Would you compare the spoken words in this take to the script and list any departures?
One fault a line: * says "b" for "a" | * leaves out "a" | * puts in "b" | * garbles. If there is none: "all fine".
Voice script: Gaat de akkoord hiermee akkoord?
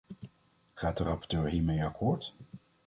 * says "rapporteur" for "akkoord"